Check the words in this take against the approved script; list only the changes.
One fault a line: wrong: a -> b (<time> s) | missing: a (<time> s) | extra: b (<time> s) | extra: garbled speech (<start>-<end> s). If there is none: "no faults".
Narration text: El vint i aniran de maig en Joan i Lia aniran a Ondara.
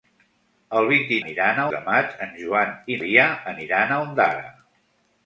no faults